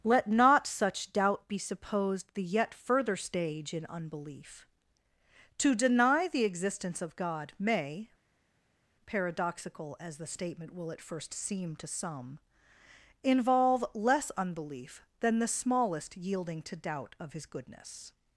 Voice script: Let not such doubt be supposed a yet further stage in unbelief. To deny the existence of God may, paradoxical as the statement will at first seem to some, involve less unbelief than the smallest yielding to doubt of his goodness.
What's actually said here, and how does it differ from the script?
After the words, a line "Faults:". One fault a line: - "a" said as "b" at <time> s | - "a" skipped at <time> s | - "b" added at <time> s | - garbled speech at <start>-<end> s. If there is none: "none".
Let not such doubt be supposed the yet further stage in unbelief. To deny the existence of God may, paradoxical as the statement will at first seem to some, involve less unbelief than the smallest yielding to doubt of his goodness.
Faults:
- "a" said as "the" at 2.3 s